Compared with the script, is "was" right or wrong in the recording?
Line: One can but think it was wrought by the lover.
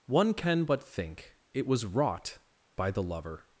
right